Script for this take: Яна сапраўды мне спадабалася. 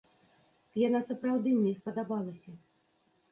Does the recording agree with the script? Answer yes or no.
yes